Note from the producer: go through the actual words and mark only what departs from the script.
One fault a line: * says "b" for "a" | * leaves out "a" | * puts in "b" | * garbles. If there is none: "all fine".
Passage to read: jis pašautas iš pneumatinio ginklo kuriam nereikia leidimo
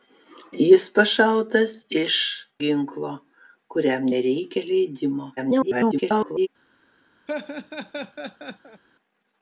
* leaves out "pneumatinio"
* garbles